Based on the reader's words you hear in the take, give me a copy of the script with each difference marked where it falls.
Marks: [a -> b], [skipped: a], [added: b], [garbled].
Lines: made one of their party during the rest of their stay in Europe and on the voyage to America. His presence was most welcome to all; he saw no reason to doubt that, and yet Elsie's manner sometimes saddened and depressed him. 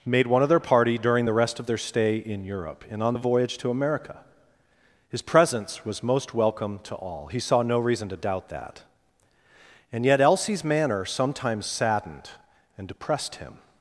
made one of their party during the rest of their stay in Europe and on the voyage to America. His presence was most welcome to all; he saw no reason to doubt that, and yet Elsie's manner sometimes saddened and depressed him.